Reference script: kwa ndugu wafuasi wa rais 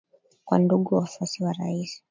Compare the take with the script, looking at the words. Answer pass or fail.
pass